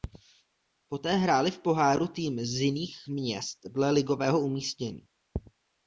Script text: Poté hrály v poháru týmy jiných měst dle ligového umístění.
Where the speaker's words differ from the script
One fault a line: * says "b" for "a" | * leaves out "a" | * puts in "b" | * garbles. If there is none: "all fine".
* puts in "z"